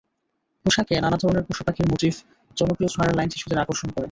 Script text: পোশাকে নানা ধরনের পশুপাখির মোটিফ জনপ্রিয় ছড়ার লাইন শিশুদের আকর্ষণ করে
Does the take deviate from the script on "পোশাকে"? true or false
false